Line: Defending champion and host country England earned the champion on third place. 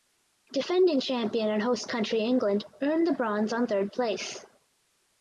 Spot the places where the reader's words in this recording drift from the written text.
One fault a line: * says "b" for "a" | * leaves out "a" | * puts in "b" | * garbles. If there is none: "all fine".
* says "bronze" for "champion"